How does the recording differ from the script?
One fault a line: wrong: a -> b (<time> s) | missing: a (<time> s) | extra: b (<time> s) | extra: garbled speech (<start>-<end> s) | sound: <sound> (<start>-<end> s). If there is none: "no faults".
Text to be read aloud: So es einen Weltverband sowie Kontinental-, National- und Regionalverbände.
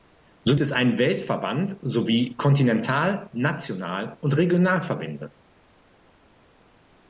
no faults